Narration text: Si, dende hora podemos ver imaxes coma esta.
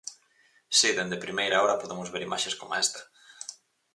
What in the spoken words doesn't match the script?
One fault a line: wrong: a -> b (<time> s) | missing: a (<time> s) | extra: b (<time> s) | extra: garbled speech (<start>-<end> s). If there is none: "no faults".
extra: primeira (1.2 s)